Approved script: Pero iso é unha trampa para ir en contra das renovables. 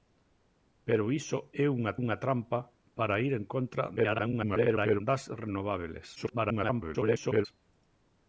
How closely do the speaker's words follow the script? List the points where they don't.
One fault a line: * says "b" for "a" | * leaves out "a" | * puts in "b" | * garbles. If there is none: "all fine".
* puts in "unha"
* garbles
* garbles